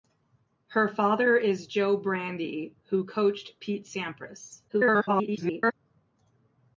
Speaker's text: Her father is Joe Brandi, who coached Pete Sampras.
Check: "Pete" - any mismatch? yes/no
no